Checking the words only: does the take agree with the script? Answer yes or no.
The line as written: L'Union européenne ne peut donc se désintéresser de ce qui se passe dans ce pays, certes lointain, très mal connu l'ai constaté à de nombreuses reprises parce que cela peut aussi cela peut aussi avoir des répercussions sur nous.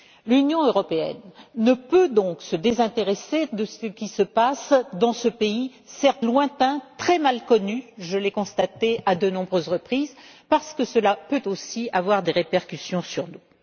no